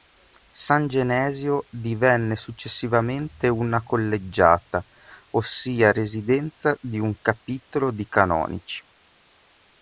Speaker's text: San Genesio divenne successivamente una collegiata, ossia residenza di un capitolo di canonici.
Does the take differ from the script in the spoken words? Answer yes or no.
no